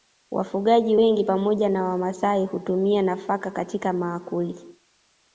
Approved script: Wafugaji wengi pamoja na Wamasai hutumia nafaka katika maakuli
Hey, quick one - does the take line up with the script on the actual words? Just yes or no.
yes